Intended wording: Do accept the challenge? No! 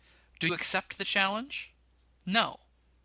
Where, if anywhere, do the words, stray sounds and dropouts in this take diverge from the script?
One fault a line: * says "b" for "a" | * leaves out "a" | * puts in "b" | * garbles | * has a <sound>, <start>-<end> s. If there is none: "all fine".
all fine